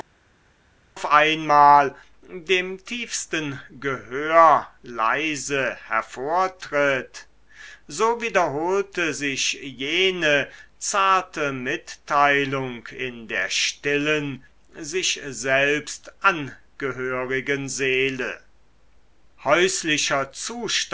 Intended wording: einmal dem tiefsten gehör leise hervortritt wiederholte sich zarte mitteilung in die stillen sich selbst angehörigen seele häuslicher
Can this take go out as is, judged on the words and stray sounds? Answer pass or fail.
fail